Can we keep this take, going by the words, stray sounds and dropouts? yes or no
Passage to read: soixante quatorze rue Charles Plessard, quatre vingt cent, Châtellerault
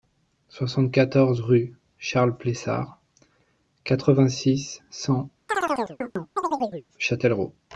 no